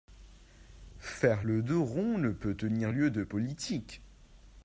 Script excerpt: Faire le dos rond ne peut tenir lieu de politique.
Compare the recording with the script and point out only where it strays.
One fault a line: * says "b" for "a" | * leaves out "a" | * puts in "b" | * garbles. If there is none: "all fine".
all fine